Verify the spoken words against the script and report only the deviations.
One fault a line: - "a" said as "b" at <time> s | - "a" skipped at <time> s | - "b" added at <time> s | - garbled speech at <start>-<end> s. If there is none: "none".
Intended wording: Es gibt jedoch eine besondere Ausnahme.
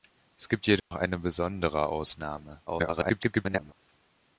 - garbled speech at 2.7-3.7 s